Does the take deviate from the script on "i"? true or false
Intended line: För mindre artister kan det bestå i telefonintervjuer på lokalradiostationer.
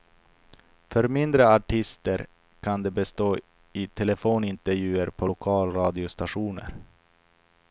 false